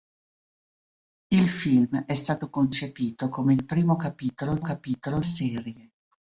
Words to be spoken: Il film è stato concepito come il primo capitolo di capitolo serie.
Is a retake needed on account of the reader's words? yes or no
no